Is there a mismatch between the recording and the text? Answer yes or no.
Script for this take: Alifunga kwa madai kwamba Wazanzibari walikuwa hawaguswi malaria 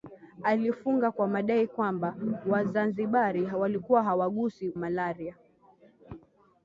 no